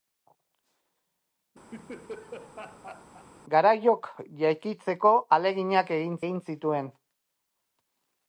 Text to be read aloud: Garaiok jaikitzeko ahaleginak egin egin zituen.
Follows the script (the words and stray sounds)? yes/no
no